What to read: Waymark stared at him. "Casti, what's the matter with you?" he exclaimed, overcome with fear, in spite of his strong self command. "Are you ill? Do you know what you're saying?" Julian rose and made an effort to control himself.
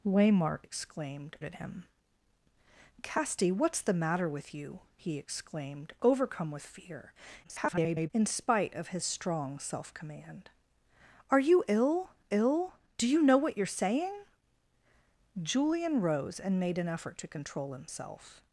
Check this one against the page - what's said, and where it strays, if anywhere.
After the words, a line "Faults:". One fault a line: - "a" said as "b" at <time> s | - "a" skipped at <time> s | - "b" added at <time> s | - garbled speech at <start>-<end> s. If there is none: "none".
Waymark exclaimed at him. "Casti, what's the matter with you?" he exclaimed, overcome with fear, [garbled] in spite of his strong self command. "Are you ill ill? Do you know what you're saying?" Julian rose and made an effort to control himself.
Faults:
- "stared" said as "exclaimed" at 0.6 s
- garbled speech at 7.4-8.1 s
- "ill" added at 12.3 s